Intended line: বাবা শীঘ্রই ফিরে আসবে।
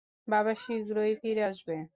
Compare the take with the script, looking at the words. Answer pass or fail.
pass